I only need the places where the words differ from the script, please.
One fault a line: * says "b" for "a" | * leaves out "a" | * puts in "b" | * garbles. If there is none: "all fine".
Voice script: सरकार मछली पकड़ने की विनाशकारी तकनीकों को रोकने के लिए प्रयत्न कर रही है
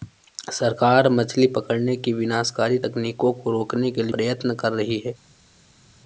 all fine